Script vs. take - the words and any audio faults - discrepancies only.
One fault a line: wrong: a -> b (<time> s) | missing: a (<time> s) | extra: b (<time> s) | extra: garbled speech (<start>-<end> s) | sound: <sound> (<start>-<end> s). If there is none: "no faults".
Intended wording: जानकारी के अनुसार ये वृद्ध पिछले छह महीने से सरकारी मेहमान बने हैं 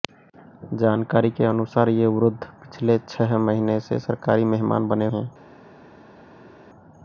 no faults